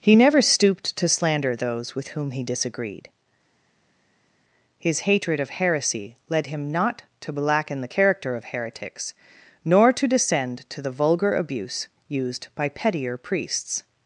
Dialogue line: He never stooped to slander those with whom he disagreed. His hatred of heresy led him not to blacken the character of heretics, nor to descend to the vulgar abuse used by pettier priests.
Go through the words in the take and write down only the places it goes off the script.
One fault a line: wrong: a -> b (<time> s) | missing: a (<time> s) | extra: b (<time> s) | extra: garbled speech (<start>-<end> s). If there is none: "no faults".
no faults